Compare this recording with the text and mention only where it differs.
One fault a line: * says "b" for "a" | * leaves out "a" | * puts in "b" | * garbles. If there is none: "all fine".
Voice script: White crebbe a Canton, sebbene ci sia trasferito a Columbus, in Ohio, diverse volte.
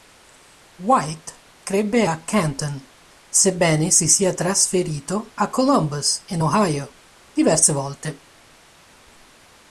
* says "si" for "ci"